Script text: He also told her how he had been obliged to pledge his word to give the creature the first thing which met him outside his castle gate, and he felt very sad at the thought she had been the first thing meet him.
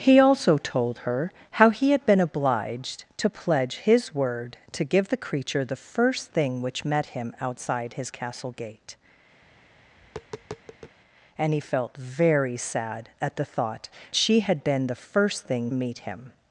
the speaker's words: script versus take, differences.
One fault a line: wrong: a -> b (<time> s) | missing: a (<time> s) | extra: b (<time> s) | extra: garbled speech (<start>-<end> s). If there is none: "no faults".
no faults